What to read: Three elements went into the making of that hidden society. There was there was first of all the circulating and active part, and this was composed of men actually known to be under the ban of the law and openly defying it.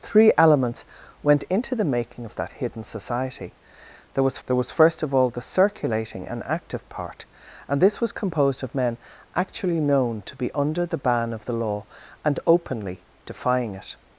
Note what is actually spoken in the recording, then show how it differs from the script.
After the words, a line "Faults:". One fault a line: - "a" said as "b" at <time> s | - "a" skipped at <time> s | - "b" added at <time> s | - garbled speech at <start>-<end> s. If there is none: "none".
Three elements went into the making of that hidden society. There was there was first of all the circulating and active part, and this was composed of men actually known to be under the ban of the law and openly defying it.
Faults:
none